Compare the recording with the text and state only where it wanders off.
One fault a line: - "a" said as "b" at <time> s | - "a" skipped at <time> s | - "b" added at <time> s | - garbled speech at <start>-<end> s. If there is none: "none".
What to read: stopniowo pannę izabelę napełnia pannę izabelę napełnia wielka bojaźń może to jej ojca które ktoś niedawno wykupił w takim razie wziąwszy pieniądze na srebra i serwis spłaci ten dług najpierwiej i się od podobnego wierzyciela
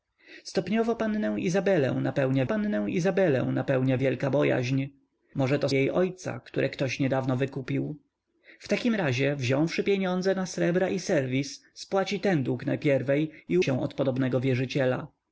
none